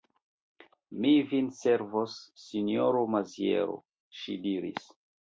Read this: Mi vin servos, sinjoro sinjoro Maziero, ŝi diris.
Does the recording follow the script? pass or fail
fail